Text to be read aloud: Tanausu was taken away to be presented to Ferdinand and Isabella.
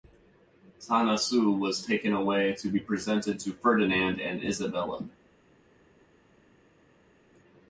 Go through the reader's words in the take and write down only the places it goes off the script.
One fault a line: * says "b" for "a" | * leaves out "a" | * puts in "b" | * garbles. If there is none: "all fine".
all fine